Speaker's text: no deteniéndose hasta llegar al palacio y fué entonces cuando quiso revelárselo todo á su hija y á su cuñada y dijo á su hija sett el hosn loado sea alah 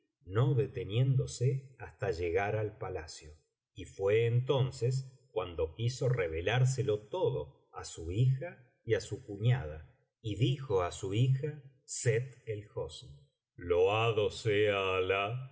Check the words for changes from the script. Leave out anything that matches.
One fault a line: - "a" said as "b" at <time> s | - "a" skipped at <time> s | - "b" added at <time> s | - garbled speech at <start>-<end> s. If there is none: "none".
none